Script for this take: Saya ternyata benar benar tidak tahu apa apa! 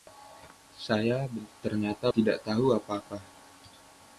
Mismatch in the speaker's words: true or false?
true